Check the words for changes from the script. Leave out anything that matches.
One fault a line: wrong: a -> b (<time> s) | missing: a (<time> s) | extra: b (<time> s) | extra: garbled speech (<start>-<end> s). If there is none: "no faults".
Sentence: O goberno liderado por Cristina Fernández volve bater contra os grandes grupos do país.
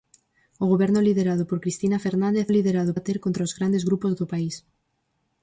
wrong: volve -> liderado (2.6 s)